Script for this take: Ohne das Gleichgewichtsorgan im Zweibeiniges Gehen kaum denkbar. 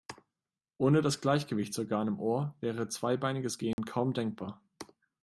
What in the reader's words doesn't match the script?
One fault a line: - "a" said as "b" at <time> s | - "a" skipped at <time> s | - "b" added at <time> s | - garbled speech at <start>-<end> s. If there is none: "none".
- "Ohr wäre" added at 2.2 s